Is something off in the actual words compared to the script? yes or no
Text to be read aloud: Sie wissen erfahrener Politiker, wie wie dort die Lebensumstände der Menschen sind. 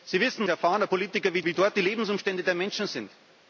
no